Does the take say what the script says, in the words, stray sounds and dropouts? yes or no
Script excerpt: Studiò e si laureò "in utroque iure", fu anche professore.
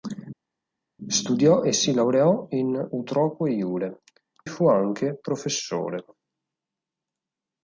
yes